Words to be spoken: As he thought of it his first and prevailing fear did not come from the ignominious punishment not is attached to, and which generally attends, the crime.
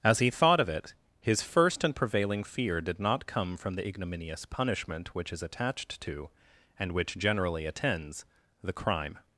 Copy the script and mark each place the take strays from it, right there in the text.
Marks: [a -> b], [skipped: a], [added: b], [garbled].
As he thought of it his first and prevailing fear did not come from the ignominious punishment [not -> which] is attached to, and which generally attends, the crime.